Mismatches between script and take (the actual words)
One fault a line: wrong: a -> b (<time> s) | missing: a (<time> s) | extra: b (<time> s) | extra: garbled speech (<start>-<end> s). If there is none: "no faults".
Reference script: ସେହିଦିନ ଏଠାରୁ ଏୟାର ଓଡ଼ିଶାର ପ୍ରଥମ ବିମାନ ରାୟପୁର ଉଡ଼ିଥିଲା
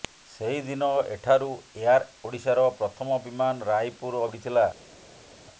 no faults